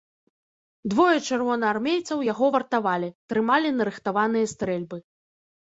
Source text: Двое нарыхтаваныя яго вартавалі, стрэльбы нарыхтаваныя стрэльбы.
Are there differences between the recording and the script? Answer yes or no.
yes